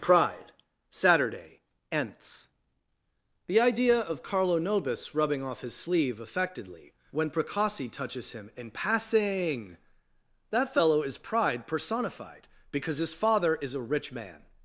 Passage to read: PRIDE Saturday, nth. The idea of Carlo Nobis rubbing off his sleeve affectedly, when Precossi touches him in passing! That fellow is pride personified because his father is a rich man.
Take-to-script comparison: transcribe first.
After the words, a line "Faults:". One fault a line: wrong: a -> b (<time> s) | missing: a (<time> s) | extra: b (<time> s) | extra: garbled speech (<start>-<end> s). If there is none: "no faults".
PRIDE Saturday, nth. The idea of Carlo Nobis rubbing off his sleeve affectedly, when Precossi touches him in passing! That fellow is pride personified because his father is a rich man.
Faults:
no faults